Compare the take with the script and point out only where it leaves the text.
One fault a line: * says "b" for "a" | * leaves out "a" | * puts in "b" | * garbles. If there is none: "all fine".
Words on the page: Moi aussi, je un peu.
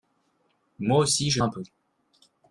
all fine